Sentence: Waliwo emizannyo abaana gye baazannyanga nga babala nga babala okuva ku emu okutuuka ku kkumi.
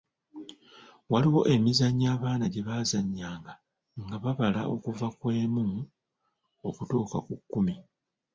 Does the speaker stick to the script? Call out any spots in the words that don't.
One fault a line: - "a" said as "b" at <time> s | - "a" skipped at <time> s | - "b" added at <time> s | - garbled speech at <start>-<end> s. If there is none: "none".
- "nga babala" skipped at 4.6 s